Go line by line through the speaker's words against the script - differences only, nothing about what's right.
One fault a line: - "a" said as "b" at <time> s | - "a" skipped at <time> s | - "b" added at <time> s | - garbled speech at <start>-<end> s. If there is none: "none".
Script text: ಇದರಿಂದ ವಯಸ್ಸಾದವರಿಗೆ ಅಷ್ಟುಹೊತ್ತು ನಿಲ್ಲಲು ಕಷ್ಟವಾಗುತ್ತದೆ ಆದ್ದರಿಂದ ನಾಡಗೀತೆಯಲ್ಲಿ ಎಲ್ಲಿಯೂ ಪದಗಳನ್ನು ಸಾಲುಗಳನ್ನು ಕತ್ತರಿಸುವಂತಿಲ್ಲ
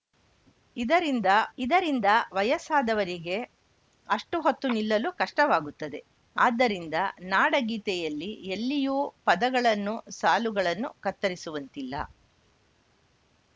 - "ಇದರಿಂದ" added at 1.6 s